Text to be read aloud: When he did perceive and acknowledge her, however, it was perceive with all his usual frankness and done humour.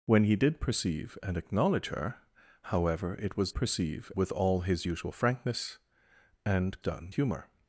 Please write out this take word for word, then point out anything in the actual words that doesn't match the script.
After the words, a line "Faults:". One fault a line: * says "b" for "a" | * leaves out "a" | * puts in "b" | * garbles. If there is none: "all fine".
When he did perceive and acknowledge her, however, it was perceive with all his usual frankness and done humour.
Faults:
all fine